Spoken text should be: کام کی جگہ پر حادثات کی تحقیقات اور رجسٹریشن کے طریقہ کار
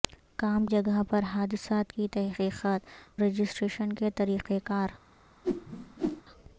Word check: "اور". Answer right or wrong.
wrong